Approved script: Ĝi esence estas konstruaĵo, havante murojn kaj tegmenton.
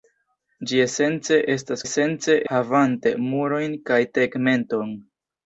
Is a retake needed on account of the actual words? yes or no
yes